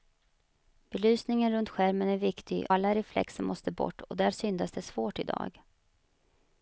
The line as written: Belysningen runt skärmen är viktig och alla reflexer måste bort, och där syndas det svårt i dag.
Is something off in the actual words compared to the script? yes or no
yes